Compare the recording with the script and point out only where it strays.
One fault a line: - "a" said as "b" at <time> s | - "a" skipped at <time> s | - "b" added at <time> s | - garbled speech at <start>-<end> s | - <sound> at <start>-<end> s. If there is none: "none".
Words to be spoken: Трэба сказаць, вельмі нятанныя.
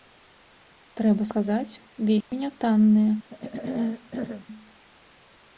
- dropout at 2.2-2.3 s
- throat clearing at 3.3-4.5 s